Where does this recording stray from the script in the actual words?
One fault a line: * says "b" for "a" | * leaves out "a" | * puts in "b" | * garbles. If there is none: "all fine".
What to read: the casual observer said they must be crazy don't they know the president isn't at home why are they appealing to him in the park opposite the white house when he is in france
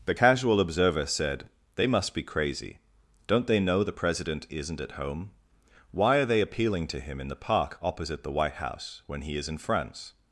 all fine